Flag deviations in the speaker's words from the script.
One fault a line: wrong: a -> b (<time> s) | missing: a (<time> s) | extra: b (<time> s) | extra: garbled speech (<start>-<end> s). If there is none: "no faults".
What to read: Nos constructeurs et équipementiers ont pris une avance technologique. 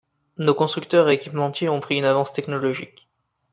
no faults